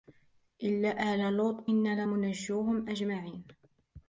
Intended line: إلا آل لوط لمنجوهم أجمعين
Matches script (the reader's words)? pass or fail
fail